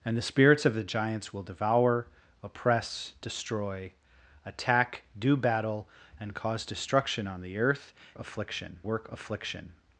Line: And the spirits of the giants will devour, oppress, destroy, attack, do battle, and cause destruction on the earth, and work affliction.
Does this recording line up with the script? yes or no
no